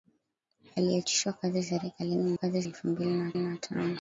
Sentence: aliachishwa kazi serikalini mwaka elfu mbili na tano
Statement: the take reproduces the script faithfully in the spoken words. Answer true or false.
false